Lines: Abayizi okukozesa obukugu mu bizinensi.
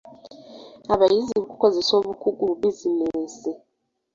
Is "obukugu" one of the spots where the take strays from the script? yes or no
no